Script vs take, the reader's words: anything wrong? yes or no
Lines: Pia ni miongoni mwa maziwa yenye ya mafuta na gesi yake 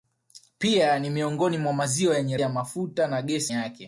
no